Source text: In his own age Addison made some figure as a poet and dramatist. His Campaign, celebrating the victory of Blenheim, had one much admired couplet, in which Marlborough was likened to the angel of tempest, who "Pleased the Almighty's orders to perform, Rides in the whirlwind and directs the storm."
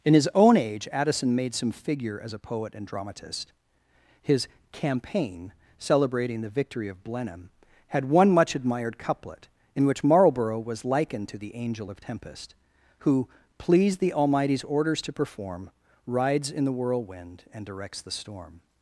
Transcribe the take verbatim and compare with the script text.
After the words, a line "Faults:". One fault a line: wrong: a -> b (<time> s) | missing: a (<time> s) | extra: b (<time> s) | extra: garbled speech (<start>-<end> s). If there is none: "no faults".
In his own age Addison made some figure as a poet and dramatist. His Campaign, celebrating the victory of Blenheim, had one much admired couplet, in which Marlborough was likened to the angel of tempest, who "Pleased the Almighty's orders to perform, Rides in the whirlwind and directs the storm."
Faults:
no faults